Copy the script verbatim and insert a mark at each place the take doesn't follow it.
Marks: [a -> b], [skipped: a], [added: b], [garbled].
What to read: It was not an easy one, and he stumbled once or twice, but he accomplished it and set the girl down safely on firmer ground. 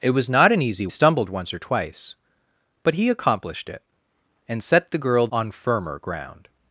It was not an easy [skipped: one, and he] stumbled once or twice, but he accomplished it and set the girl [skipped: down safely] on firmer ground.